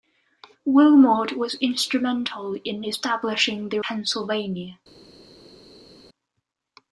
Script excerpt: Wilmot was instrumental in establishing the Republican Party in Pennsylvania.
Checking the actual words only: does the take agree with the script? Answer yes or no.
no